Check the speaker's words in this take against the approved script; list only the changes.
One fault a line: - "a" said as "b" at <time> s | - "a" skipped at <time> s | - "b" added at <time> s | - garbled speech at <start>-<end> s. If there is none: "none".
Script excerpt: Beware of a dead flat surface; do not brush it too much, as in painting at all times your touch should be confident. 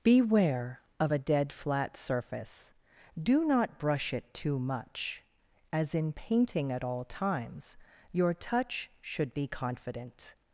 none